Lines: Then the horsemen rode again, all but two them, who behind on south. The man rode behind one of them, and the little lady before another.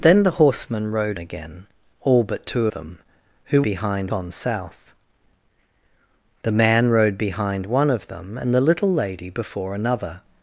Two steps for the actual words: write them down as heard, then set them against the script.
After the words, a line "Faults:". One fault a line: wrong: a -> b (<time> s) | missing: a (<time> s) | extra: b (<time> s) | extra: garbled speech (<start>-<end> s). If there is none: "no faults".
Then the horsemen rode again, all but two them, who behind on south. The man rode behind one of them, and the little lady before another.
Faults:
no faults